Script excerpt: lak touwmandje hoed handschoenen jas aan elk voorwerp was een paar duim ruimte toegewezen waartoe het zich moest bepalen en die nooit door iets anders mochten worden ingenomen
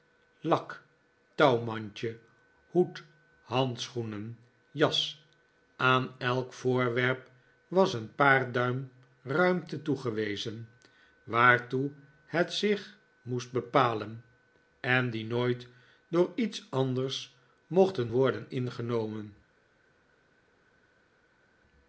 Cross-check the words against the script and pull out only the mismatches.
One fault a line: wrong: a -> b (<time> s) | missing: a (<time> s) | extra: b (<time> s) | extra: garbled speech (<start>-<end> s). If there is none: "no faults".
no faults